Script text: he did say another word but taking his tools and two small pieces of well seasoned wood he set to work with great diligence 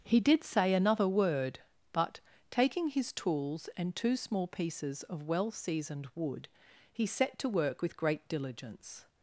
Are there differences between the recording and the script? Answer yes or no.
no